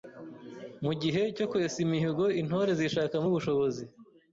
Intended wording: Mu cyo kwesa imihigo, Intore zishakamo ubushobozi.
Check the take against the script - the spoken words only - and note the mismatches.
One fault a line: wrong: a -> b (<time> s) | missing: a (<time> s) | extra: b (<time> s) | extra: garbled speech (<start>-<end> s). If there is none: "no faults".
extra: gihe (1.0 s)